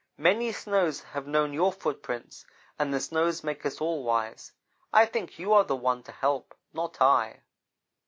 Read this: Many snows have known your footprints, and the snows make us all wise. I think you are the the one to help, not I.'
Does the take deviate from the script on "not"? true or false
false